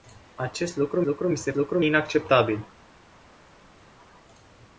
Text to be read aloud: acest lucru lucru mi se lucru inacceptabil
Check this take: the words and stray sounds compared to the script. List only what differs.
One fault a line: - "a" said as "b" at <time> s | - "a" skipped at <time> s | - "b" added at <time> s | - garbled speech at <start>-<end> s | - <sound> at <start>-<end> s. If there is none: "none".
none